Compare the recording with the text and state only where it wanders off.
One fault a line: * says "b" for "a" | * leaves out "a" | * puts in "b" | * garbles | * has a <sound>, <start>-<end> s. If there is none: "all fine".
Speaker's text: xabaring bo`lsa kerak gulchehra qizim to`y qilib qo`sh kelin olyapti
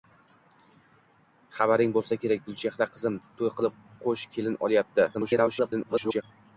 * garbles